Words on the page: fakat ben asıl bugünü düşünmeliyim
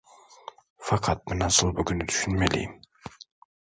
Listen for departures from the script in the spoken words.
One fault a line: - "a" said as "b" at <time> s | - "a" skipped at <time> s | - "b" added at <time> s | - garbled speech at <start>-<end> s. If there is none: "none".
none